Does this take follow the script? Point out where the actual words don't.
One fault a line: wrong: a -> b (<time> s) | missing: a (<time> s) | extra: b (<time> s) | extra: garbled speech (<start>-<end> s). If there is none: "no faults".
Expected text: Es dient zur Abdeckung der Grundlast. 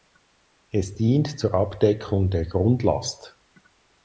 no faults